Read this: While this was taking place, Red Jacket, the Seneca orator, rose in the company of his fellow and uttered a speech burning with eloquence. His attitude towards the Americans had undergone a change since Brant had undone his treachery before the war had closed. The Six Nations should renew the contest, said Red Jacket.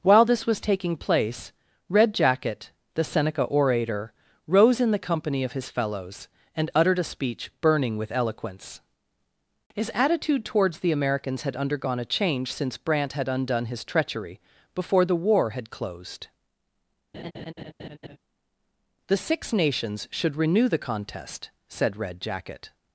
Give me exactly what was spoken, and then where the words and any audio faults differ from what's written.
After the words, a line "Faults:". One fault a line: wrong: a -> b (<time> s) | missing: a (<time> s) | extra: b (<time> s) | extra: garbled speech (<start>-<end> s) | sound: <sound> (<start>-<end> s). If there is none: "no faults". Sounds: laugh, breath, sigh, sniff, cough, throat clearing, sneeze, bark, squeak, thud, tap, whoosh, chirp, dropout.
While this was taking place, Red Jacket, the Seneca orator, rose in the company of his fellows and uttered a speech burning with eloquence. His attitude towards the Americans had undergone a change since Brant had undone his treachery before the war had closed. The Six Nations should renew the contest, said Red Jacket.
Faults:
wrong: fellow -> fellows (5.7 s)
sound: laugh (17.1-18.2 s)